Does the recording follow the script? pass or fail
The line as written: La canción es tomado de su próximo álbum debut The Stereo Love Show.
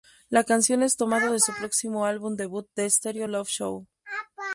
pass